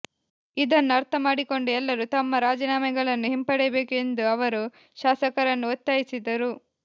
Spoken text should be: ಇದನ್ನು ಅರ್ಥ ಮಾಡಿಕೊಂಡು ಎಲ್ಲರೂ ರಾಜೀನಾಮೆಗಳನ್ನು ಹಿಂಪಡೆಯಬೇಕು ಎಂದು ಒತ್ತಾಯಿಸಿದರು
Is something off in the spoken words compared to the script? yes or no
yes